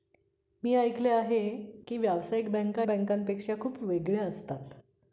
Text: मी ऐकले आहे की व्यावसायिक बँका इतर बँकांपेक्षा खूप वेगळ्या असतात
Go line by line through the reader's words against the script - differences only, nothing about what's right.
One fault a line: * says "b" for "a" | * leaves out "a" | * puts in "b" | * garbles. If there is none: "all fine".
* leaves out "इतर"